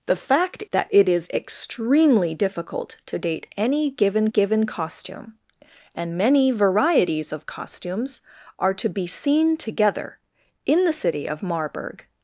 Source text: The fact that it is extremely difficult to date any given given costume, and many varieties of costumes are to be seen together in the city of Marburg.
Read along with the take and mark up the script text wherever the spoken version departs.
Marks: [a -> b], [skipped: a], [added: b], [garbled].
The fact that it is extremely difficult to date any given given costume, and many varieties of costumes are to be seen together in the city of Marburg.